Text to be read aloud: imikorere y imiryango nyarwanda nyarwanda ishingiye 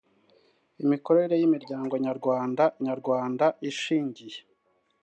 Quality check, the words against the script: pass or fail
pass